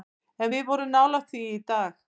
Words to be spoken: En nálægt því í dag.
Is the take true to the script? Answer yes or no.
no